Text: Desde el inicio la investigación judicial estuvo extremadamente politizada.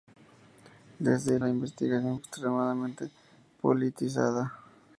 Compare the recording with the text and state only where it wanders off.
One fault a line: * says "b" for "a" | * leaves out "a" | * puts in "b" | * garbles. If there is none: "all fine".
* leaves out "inicio"
* leaves out "judicial estuvo"